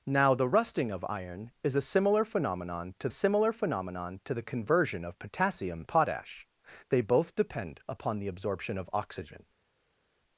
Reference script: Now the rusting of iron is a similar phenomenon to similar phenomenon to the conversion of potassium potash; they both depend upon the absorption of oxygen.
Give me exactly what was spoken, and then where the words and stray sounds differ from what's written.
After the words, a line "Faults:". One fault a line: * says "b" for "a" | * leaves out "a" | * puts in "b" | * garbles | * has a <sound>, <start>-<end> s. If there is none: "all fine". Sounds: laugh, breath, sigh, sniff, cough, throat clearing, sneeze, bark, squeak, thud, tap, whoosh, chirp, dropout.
Now the rusting of iron is a similar phenomenon to similar phenomenon to the conversion of potassium potash; they both depend upon the absorption of oxygen.
Faults:
all fine